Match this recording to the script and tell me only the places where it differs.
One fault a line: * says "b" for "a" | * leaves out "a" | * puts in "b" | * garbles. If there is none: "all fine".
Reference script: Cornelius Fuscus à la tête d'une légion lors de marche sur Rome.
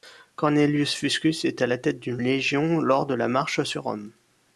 * puts in "est"
* puts in "la"